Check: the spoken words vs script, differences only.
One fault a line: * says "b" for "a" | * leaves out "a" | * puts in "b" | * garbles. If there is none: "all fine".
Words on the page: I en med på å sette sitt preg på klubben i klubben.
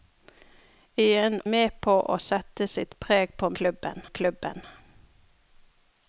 all fine